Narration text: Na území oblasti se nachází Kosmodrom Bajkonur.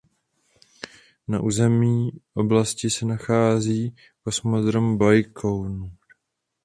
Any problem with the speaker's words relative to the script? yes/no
no